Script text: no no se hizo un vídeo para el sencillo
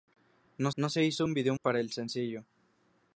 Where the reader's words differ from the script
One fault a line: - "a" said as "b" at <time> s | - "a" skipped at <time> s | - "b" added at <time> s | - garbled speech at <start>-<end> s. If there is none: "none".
none